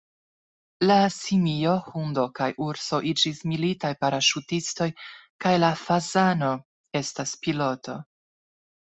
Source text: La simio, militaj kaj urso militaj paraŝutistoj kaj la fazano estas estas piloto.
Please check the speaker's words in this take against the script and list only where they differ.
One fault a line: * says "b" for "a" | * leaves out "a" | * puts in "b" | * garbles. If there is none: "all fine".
* says "hundo" for "militaj"
* puts in "iĝis"
* leaves out "estas"